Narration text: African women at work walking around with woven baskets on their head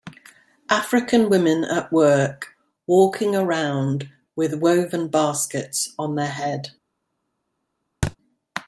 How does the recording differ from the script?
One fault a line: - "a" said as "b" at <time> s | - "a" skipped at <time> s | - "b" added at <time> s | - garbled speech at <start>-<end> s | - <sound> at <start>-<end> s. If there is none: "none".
- thud at 8.0-8.2 s